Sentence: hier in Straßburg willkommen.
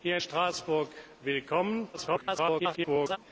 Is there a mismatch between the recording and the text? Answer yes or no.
yes